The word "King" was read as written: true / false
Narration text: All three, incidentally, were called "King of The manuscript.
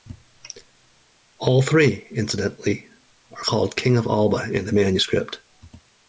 true